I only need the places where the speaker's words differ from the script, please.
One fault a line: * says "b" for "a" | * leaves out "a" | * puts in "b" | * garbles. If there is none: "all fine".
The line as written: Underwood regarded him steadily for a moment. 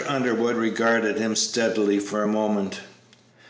all fine